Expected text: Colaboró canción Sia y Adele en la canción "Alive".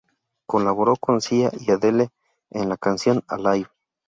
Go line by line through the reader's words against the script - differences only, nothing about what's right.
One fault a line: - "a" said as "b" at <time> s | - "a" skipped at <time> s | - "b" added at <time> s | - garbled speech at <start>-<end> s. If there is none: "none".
- "canción" said as "con" at 0.9 s